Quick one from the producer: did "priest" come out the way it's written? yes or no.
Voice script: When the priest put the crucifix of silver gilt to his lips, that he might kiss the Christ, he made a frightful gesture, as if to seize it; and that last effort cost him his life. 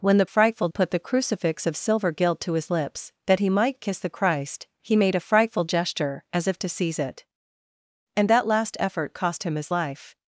no